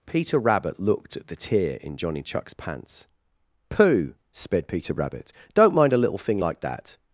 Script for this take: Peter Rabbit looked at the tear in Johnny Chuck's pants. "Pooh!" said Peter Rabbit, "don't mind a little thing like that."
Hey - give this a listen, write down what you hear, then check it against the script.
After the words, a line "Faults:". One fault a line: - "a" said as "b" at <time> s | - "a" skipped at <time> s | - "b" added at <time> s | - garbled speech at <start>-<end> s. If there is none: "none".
Peter Rabbit looked at the tear in Johnny Chuck's pants. "Pooh!" sped Peter Rabbit, "don't mind a little thing like that."
Faults:
- "said" said as "sped" at 4.3 s